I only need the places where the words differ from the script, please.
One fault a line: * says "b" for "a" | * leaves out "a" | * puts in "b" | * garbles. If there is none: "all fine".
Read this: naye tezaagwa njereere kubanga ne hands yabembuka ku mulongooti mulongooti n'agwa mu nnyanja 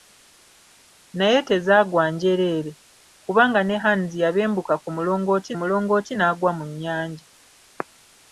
all fine